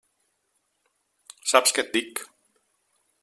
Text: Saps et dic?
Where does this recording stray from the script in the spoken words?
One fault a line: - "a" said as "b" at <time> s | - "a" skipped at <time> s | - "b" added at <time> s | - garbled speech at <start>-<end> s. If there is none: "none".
- "què" added at 1.8 s